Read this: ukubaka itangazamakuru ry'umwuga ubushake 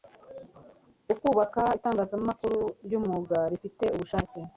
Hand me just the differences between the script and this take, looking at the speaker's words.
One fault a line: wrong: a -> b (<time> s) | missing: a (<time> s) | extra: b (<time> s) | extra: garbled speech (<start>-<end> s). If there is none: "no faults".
extra: rifite (3.5 s)